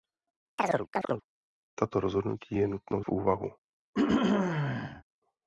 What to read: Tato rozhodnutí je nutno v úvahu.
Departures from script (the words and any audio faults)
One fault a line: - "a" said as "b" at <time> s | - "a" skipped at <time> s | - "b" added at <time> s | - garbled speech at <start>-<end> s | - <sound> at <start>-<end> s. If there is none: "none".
- chirp at 0.6-1.2 s
- throat clearing at 3.9-5.0 s